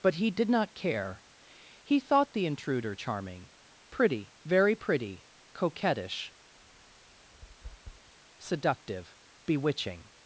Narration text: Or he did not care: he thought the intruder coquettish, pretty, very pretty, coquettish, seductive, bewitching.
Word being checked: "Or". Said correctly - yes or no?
no